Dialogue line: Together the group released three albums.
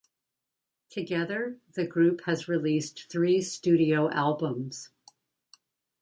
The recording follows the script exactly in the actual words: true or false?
false